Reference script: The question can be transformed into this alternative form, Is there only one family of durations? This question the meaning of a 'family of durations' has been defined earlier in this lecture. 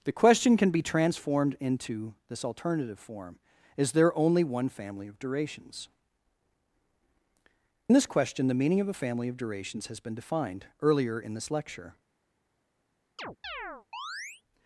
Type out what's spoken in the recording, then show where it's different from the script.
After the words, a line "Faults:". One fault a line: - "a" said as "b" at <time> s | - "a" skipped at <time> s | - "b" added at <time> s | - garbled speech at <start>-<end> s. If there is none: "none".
The question can be transformed into this alternative form, Is there only one family of durations? This question the meaning of a 'family of durations' has been defined earlier in this lecture.
Faults:
none